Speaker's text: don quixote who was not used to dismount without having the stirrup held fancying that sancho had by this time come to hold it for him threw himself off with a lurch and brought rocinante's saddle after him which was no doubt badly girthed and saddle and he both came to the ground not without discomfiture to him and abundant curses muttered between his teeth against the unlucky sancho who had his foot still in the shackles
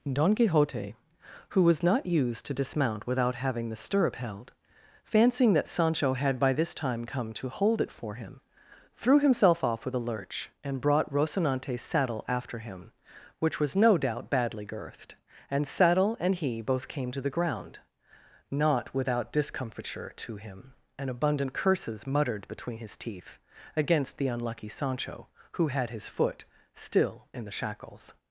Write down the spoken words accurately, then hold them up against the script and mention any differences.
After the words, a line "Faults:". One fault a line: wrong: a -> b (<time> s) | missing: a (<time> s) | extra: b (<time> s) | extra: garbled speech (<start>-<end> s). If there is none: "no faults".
don quixote who was not used to dismount without having the stirrup held fancying that sancho had by this time come to hold it for him threw himself off with a lurch and brought rocinante's saddle after him which was no doubt badly girthed and saddle and he both came to the ground not without discomfiture to him and abundant curses muttered between his teeth against the unlucky sancho who had his foot still in the shackles
Faults:
no faults